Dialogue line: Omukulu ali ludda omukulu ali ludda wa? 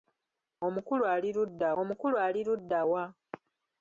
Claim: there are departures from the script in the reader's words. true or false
false